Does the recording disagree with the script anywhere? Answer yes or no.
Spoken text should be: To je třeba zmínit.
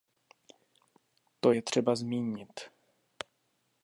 no